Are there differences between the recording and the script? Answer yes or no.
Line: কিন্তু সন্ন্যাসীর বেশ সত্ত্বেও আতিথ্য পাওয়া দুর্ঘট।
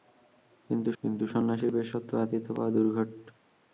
yes